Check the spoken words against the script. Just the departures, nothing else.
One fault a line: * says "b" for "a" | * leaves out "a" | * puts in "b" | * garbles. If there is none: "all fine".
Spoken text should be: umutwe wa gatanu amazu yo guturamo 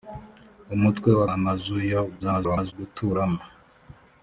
* leaves out "gatanu"
* garbles